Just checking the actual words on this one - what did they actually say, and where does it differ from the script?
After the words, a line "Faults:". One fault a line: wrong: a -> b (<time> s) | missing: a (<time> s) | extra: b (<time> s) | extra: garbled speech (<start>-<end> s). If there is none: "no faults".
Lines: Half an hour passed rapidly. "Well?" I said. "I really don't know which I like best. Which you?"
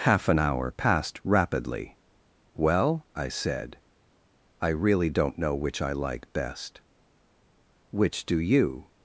Half an hour passed rapidly. "Well?" I said. "I really don't know which I like best. Which do you?"
Faults:
extra: do (8.3 s)